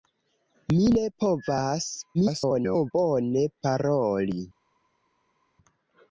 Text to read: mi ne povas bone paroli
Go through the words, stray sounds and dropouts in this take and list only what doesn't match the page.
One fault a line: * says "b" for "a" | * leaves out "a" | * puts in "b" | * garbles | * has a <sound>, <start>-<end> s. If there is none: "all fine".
* garbles